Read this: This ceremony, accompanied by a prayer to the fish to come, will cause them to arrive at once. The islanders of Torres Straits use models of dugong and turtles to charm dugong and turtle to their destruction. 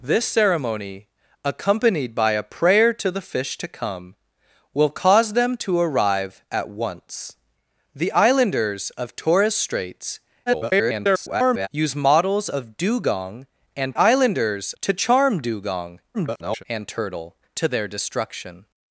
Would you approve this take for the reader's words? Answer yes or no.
no